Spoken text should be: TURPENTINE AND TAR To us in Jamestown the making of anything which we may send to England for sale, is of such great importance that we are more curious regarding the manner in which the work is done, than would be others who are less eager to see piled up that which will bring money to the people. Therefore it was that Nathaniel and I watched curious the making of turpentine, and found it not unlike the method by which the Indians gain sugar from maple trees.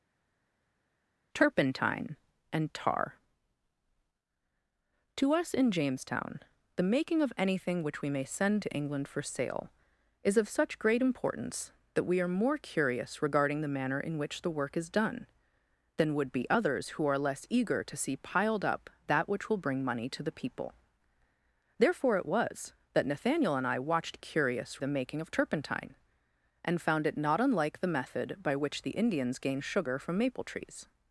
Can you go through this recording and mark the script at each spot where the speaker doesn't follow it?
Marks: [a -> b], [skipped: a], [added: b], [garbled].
TURPENTINE AND TAR To us in Jamestown the making of anything which we may send to England for sale, is of such great importance that we are more curious regarding the manner in which the work is done, than would be others who are less eager to see piled up that which will bring money to the people. Therefore it was that Nathaniel and I watched curious the making of turpentine, and found it not unlike the method by which the Indians gain sugar from maple trees.